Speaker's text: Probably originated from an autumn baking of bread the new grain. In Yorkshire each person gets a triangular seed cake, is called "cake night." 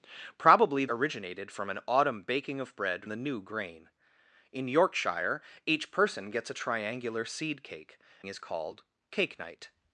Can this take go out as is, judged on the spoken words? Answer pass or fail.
pass